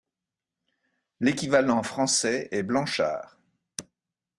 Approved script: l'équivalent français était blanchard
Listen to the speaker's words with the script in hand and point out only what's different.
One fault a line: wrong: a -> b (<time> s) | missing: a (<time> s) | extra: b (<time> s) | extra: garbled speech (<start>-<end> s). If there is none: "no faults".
wrong: était -> est (2.5 s)